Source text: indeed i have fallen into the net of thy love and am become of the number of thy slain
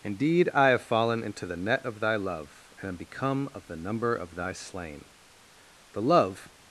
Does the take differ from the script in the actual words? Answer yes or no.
yes